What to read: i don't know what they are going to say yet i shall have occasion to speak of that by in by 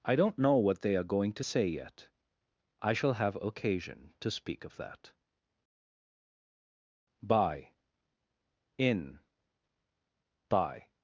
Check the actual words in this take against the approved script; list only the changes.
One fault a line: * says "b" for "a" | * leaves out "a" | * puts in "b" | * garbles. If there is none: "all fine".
all fine